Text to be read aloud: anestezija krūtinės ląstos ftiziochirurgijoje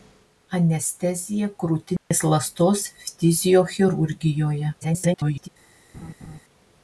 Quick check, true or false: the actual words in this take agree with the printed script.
false